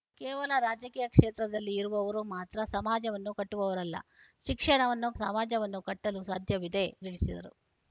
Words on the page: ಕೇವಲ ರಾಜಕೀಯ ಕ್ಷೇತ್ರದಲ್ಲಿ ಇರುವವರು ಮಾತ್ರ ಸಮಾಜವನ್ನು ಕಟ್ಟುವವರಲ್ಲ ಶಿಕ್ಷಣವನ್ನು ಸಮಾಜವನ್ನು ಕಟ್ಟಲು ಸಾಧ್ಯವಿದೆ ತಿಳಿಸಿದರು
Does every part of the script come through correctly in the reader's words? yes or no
yes